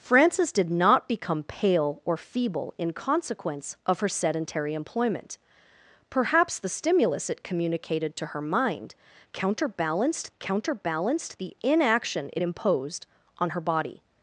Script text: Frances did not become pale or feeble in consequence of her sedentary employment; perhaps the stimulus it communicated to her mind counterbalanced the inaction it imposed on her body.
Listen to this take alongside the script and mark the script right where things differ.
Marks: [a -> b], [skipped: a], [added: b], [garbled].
Frances did not become pale or feeble in consequence of her sedentary employment; perhaps the stimulus it communicated to her mind counterbalanced [added: counterbalanced] the inaction it imposed on her body.